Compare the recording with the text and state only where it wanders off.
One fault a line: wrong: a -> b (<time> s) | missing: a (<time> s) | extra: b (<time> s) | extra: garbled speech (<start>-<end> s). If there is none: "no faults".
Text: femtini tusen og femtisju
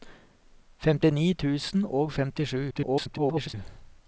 extra: garbled speech (2.7-3.5 s)